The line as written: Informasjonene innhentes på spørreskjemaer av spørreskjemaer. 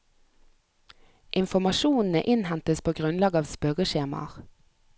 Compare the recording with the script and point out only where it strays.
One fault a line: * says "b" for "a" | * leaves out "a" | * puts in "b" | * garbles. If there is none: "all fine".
* says "grunnlag" for "spørreskjemaer"